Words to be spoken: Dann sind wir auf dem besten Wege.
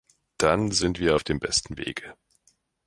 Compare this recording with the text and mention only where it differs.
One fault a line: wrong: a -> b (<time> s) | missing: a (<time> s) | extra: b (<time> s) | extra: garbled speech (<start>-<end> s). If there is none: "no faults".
no faults